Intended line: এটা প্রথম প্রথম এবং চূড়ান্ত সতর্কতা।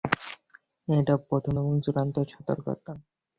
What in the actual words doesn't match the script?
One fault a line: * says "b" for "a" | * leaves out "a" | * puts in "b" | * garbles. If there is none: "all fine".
* leaves out "প্রথম"